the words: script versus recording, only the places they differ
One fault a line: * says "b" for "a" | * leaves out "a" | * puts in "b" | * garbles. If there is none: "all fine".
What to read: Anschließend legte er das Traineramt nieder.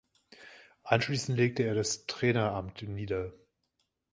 all fine